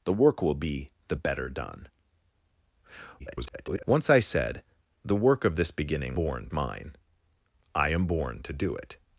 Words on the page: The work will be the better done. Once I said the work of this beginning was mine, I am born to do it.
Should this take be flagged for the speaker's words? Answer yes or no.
yes